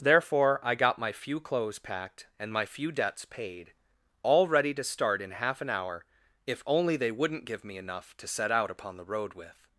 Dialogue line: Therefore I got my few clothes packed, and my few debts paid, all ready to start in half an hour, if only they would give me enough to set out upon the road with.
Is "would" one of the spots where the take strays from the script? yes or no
yes